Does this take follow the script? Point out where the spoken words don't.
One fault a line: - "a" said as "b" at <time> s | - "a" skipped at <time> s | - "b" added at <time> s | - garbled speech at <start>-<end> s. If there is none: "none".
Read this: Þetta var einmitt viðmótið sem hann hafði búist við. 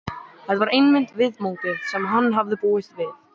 none